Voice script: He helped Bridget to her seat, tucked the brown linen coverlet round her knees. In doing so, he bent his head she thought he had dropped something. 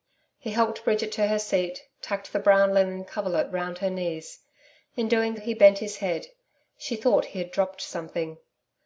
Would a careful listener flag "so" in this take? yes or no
yes